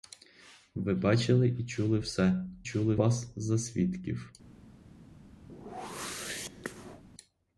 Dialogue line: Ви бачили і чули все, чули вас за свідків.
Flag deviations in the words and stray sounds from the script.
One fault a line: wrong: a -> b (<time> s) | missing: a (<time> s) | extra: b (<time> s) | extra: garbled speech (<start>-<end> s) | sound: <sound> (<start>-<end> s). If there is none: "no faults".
sound: whoosh (5.5-7.0 s)